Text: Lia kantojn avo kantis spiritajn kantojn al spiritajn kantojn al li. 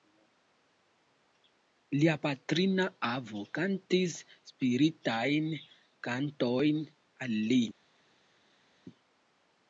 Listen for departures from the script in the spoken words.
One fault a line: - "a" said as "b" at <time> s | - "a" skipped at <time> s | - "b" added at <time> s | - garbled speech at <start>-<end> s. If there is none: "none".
- "kantojn" said as "patrina" at 2.2 s
- "spiritajn kantojn al" skipped at 7.4 s